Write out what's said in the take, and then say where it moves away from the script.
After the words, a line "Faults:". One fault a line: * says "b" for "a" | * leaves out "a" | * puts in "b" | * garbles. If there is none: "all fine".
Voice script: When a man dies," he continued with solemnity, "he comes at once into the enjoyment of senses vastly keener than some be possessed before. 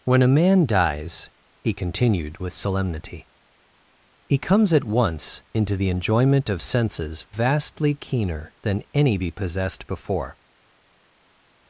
When a man dies," he continued with solemnity, "he comes at once into the enjoyment of senses vastly keener than any be possessed before.
Faults:
* says "any" for "some"